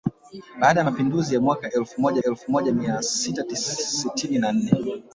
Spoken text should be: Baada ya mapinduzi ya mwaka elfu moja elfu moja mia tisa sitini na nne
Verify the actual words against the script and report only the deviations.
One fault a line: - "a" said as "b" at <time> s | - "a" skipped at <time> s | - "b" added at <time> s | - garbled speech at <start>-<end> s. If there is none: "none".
none